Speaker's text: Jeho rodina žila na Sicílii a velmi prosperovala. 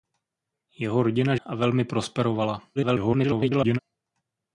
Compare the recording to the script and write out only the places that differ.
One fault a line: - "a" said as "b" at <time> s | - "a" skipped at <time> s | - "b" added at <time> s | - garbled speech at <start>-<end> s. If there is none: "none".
- "žila na Sicílii" skipped at 1.4 s
- garbled speech at 2.8-3.8 s